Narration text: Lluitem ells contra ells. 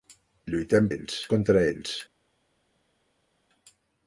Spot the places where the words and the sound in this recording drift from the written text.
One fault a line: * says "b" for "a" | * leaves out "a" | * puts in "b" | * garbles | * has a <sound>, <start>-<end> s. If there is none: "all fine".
all fine